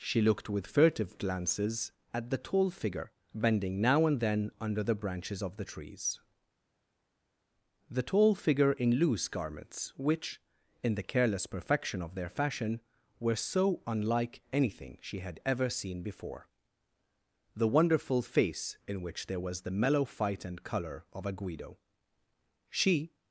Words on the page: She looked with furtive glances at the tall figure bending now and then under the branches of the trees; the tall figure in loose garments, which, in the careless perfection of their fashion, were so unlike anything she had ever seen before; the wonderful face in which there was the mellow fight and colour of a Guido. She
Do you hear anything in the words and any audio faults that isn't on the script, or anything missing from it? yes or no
no